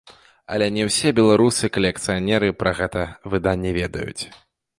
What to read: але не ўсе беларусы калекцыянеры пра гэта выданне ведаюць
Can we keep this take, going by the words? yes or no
yes